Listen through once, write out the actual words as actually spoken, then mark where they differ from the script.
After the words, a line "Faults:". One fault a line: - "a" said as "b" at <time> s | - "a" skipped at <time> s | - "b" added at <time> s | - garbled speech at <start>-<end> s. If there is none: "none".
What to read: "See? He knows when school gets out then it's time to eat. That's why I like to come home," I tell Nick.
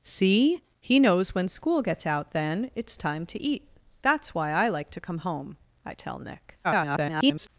"See? He knows when school gets out then it's time to eat. That's why I like to come home," I tell Nick. [garbled]
Faults:
- garbled speech at 6.6-7.5 s